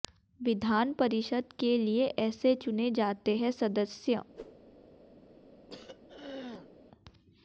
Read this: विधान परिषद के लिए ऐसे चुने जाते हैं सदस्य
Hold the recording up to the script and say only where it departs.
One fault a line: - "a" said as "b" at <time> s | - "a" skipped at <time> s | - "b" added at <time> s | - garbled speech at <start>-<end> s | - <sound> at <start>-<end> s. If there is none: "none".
- whoosh at 4.4-4.6 s
- throat clearing at 5.7-6.7 s